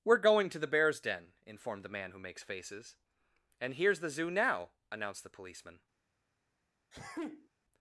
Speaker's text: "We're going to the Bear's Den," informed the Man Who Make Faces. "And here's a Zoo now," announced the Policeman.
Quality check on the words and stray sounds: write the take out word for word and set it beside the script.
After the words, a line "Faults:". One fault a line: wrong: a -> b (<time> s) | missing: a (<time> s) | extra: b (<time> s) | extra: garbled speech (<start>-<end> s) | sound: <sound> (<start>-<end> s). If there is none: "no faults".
"We're going to the Bear's Den," informed the Man Who Makes Faces. "And here's the Zoo now," announced the Policeman.
Faults:
wrong: Make -> Makes (2.2 s)
wrong: a -> the (4.0 s)
sound: sneeze (6.9-7.5 s)